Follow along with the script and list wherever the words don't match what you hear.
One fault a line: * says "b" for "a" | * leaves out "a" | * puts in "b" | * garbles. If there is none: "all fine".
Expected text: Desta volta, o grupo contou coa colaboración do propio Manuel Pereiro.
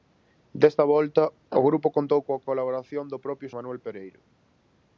all fine